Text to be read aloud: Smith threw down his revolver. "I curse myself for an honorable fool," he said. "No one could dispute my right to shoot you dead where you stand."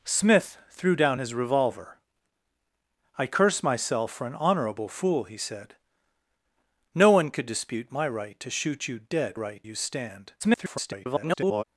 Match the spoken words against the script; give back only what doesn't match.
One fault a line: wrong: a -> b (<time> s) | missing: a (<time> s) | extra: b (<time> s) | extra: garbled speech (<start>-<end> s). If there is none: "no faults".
wrong: where -> right (9.3 s)
extra: garbled speech (10.4-11.6 s)